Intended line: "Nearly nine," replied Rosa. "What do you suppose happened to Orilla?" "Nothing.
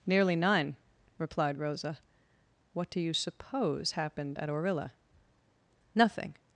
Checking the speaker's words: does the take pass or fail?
fail